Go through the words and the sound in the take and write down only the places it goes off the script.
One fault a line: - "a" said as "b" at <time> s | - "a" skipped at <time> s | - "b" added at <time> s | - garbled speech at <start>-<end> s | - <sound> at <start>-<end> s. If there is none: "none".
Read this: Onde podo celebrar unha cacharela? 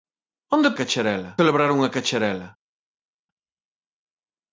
- "podo" said as "cacharela" at 0.8 s